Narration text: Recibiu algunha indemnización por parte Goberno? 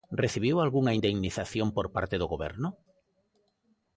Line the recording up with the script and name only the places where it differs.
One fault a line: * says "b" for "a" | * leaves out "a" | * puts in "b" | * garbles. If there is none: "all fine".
* puts in "do"